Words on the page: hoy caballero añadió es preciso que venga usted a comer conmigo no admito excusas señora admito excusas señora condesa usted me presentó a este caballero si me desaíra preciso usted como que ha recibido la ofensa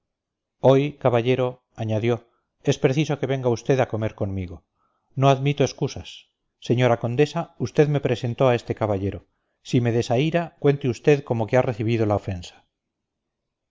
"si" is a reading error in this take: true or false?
false